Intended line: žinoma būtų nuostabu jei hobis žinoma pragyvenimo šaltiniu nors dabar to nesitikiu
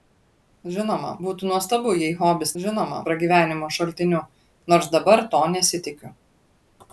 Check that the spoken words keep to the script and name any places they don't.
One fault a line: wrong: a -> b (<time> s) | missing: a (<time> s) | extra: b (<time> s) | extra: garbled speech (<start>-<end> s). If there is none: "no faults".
no faults